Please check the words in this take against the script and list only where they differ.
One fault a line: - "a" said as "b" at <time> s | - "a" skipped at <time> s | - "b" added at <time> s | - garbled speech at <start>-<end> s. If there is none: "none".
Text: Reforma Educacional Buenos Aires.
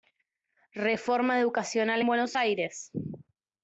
none